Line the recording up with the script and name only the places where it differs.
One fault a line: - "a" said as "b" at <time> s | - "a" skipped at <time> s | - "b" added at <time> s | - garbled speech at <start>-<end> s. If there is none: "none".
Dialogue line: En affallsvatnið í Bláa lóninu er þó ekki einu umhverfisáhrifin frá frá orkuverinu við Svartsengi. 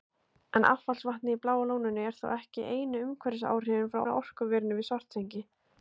none